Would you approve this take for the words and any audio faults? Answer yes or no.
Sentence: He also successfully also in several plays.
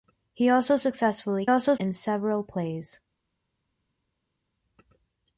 yes